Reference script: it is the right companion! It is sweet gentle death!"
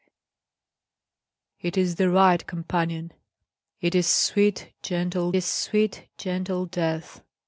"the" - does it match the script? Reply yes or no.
yes